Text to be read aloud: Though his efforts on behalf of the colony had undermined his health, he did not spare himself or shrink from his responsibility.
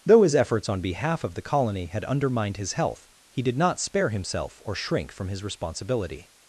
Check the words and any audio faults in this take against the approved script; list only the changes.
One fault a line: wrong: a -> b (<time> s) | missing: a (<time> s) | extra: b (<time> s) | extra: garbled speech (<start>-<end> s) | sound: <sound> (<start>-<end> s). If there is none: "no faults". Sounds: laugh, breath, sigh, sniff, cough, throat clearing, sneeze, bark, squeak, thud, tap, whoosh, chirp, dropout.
no faults